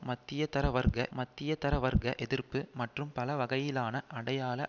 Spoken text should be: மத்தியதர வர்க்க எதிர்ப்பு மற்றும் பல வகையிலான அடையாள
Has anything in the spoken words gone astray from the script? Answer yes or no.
yes